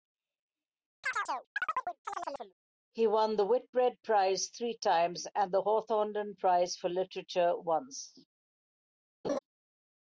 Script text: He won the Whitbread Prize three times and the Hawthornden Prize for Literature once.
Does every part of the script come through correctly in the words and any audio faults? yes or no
no